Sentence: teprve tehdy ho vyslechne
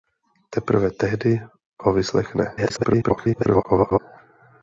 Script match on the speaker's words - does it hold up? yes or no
no